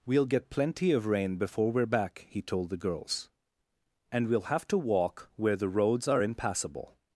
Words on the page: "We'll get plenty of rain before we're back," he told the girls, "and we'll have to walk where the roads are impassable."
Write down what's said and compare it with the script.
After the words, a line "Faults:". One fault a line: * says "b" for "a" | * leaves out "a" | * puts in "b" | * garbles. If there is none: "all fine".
"We'll get plenty of rain before we're back," he told the girls, "and we'll have to walk where the roads are impassable."
Faults:
all fine